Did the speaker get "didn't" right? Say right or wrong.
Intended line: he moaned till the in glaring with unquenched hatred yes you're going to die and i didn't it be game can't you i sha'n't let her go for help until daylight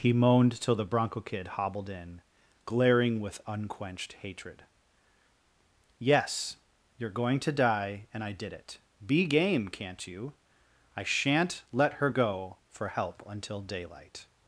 wrong